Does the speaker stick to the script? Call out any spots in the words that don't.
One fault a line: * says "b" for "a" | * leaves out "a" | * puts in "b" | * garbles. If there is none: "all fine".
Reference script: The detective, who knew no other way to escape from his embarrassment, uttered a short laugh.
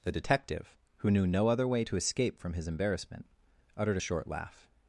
all fine